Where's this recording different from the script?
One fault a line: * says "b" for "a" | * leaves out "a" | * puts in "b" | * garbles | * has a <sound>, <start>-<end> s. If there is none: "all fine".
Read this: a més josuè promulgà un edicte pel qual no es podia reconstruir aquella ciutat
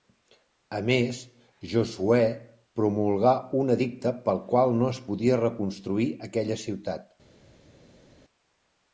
all fine